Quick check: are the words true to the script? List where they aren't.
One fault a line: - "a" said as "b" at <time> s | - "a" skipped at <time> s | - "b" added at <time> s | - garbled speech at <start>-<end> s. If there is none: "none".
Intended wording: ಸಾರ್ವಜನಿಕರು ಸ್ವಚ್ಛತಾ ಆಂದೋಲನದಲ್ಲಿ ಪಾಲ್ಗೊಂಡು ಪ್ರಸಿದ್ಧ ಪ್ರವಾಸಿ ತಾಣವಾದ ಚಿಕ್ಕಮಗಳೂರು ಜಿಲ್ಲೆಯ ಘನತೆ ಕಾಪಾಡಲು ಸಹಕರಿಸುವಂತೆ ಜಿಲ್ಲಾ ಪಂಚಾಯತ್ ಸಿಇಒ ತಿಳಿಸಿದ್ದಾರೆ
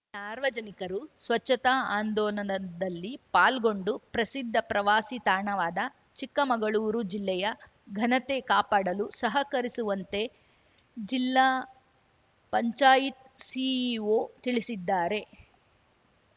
none